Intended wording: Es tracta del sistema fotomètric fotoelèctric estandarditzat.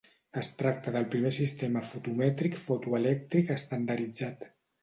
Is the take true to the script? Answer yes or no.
no